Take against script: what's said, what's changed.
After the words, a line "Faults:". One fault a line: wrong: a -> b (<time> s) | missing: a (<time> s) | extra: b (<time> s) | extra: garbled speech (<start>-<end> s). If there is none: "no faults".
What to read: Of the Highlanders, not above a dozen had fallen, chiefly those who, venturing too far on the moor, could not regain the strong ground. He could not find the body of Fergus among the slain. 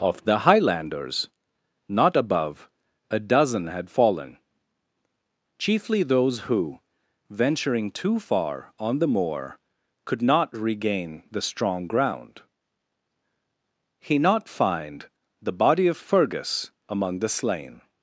Of the Highlanders, not above a dozen had fallen, chiefly those who, venturing too far on the moor, could not regain the strong ground. He not find the body of Fergus among the slain.
Faults:
missing: could (14.2 s)